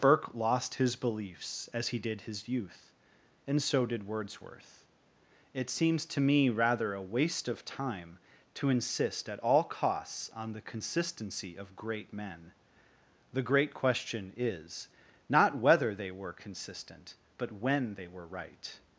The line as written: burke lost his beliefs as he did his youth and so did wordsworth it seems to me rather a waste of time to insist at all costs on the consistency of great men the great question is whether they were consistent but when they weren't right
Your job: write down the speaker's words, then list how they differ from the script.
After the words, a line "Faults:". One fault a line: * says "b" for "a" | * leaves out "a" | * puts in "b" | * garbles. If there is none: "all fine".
burke lost his beliefs as he did his youth and so did wordsworth it seems to me rather a waste of time to insist at all costs on the consistency of great men the great question is not whether they were consistent but when they were right
Faults:
* puts in "not"
* says "were" for "weren't"